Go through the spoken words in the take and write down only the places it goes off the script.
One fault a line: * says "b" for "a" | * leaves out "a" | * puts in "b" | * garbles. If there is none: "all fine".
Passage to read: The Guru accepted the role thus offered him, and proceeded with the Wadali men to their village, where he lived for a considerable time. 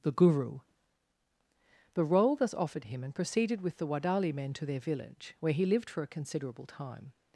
* leaves out "accepted"